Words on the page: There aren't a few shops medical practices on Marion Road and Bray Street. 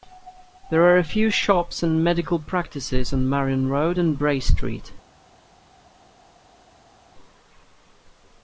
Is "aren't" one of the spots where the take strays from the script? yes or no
yes